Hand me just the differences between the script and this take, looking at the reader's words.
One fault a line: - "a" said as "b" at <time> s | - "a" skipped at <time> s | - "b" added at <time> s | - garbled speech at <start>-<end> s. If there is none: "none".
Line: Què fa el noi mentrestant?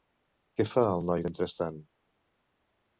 none